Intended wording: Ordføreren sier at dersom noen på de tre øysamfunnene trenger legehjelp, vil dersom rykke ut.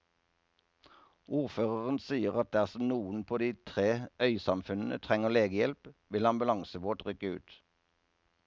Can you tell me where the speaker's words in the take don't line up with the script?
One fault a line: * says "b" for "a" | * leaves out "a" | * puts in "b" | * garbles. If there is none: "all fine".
* says "ambulansebåt" for "dersom"